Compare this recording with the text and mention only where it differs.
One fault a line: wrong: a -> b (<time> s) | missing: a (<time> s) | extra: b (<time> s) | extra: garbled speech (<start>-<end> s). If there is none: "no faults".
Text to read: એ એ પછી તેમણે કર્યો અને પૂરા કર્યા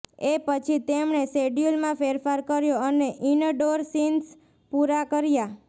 missing: એ (0.4 s)
extra: શેડ્યૂલમાં ફેરફાર (1.3 s)
extra: ઇનડોર સીન્સ (3.3 s)